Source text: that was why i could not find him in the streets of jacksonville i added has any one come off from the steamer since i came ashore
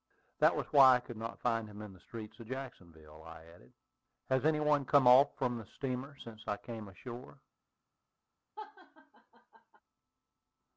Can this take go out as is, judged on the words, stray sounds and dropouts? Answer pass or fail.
fail